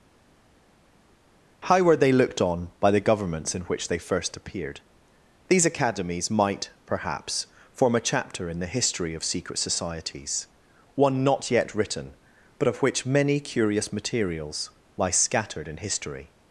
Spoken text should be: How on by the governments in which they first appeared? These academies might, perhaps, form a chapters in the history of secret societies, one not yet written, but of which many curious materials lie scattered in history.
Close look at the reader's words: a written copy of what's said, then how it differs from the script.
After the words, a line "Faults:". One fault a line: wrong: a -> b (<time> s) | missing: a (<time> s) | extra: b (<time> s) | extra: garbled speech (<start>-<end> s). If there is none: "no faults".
How were they looked on by the governments in which they first appeared? These academies might, perhaps, form a chapter in the history of secret societies, one not yet written, but of which many curious materials lie scattered in history.
Faults:
extra: were they looked (1.8 s)
wrong: chapters -> chapter (8.0 s)